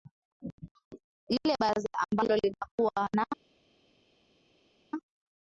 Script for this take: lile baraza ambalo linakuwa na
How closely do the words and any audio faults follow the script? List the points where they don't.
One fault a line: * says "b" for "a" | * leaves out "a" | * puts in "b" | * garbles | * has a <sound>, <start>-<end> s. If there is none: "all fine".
all fine